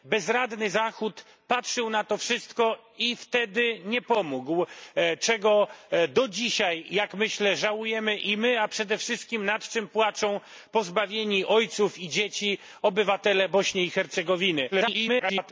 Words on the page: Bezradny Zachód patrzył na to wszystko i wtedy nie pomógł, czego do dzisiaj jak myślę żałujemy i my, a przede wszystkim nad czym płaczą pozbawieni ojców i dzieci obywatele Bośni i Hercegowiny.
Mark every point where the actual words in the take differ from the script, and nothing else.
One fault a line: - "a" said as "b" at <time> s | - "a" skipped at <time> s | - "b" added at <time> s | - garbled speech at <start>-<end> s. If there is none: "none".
- garbled speech at 14.7-15.5 s